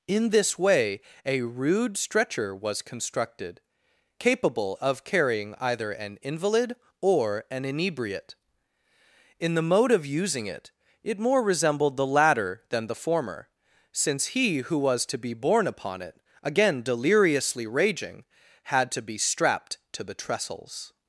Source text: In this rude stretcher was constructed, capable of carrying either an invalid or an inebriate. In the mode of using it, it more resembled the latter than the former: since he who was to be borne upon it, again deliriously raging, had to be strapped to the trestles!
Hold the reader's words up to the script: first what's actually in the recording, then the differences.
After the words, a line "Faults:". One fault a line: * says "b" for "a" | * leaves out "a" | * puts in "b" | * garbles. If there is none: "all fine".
In this way a rude stretcher was constructed, capable of carrying either an invalid or an inebriate. In the mode of using it, it more resembled the latter than the former: since he who was to be borne upon it, again deliriously raging, had to be strapped to the trestles!
Faults:
* puts in "way a"